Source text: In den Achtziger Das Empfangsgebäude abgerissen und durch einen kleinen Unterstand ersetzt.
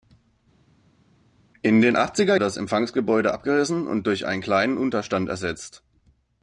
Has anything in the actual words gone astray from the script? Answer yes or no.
no